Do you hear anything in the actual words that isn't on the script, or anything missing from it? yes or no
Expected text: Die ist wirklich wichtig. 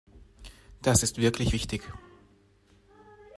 yes